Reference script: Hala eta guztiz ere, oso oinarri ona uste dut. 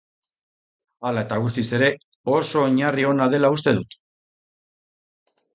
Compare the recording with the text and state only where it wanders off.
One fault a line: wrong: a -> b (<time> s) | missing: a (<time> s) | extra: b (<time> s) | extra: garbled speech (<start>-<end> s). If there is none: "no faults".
extra: dela (3.4 s)